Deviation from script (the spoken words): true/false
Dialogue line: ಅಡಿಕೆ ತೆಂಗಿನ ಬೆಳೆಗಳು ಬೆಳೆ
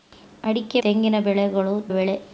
false